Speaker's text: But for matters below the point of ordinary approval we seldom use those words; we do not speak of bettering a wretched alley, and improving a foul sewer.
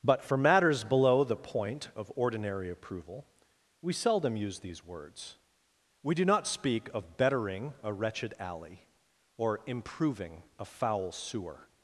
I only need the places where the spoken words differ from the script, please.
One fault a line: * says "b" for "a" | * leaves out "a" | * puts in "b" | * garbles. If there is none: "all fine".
* says "these" for "those"
* says "or" for "and"